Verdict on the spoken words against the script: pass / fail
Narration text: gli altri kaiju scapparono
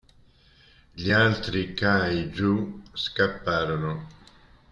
pass